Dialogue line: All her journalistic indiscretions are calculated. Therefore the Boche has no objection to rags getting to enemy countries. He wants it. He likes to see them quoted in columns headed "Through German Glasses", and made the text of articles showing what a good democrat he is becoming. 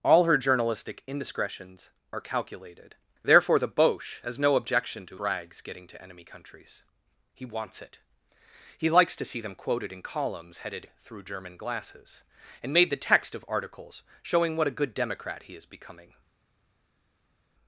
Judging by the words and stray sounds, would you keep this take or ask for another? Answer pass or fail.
pass